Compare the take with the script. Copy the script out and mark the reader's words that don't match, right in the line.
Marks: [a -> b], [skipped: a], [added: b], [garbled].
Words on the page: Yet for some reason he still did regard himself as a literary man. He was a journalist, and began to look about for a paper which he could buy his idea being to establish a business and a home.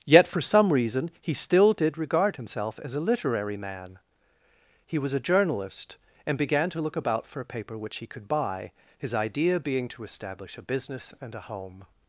Yet for some reason he still did regard himself as a literary man. He was a journalist, and began to look about for a paper which he could buy his idea being to establish a business and a home.